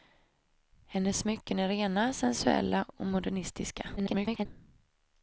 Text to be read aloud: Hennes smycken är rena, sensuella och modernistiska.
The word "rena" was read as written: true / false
true